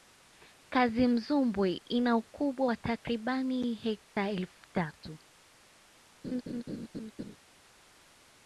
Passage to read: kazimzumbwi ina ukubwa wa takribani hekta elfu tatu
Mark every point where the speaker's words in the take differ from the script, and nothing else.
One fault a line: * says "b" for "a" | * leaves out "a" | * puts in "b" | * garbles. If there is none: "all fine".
all fine